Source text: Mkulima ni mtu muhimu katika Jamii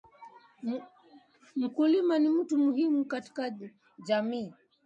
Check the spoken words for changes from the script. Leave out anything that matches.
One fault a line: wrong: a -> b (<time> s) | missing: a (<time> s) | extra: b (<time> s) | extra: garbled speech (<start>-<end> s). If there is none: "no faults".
no faults